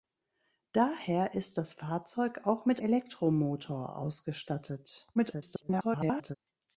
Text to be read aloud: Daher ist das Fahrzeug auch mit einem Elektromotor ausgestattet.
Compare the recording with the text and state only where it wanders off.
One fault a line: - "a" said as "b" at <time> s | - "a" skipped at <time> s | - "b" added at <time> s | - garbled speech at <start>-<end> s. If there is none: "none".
- "einem" skipped at 2.8 s
- garbled speech at 5.1-6.4 s